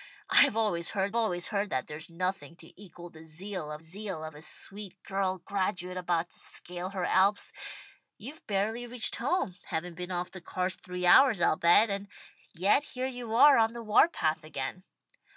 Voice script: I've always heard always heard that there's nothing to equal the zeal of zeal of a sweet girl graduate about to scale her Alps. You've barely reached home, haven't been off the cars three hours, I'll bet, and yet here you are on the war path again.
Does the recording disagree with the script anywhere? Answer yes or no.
no